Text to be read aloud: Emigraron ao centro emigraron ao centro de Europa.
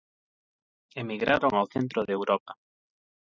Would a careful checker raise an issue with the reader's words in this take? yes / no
yes